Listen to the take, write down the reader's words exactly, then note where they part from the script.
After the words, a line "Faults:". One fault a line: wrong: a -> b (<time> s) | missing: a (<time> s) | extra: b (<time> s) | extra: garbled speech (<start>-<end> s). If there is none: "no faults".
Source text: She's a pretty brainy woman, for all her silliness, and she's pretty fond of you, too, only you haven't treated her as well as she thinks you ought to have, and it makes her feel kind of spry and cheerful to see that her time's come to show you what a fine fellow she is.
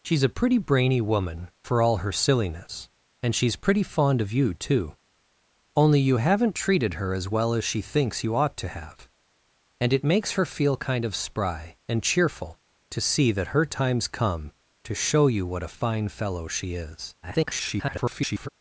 She's a pretty brainy woman, for all her silliness, and she's pretty fond of you, too, only you haven't treated her as well as she thinks you ought to have, and it makes her feel kind of spry and cheerful to see that her time's come to show you what a fine fellow she is. [garbled]
Faults:
extra: garbled speech (17.2-18.5 s)